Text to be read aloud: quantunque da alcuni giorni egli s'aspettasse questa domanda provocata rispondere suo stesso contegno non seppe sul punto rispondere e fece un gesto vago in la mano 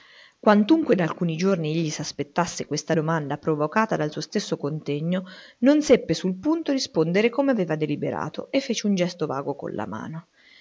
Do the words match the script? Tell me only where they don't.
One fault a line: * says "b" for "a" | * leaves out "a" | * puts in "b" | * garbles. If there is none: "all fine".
* says "dal" for "rispondere"
* puts in "come aveva deliberato"
* says "con" for "in"